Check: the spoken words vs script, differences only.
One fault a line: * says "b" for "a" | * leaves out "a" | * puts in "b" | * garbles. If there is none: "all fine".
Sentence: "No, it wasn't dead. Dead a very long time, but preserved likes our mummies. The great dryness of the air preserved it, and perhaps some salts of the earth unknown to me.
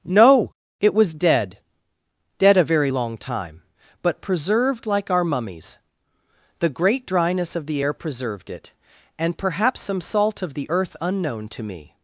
* says "was" for "wasn't"
* says "like" for "likes"
* says "salt" for "salts"